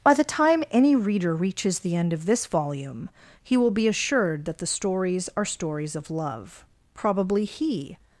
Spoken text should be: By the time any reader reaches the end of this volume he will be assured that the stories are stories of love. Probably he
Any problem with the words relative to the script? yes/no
no